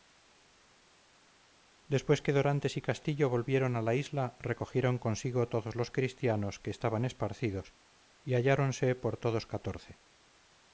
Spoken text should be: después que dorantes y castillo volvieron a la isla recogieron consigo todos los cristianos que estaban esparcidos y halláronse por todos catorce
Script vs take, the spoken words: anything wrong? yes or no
no